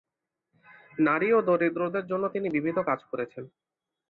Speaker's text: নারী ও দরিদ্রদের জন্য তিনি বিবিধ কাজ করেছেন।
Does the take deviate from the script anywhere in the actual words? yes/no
no